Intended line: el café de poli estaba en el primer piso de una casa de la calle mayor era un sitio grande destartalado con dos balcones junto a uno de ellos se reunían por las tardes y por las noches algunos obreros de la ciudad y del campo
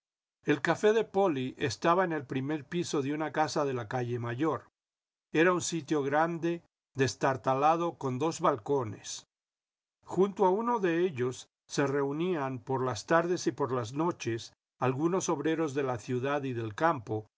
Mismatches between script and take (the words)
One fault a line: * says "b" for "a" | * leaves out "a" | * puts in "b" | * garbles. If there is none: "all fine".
all fine